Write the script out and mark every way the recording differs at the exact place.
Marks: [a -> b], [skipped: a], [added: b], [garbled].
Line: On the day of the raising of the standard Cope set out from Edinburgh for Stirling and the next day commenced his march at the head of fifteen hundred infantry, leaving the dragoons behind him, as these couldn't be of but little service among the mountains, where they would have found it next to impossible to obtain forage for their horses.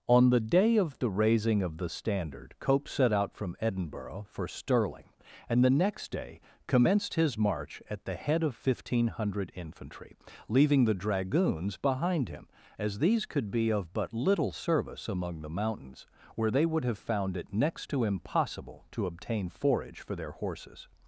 On the day of the raising of the standard Cope set out from Edinburgh for Stirling and the next day commenced his march at the head of fifteen hundred infantry, leaving the dragoons behind him, as these [couldn't -> could] be of but little service among the mountains, where they would have found it next to impossible to obtain forage for their horses.